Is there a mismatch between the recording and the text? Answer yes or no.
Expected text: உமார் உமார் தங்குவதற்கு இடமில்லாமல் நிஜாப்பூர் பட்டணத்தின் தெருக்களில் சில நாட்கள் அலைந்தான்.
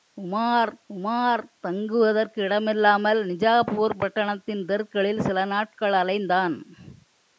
no